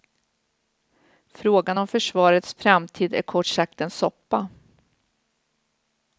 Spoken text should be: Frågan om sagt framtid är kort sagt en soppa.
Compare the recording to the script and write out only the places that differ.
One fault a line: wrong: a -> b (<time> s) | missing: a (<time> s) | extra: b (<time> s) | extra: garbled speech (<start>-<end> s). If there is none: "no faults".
wrong: sagt -> försvarets (1.9 s)